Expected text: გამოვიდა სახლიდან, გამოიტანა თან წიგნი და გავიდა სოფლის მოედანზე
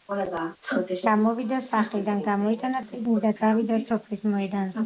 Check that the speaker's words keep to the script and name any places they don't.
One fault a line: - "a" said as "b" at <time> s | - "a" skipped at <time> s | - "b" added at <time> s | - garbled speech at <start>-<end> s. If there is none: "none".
- "თან" skipped at 2.8 s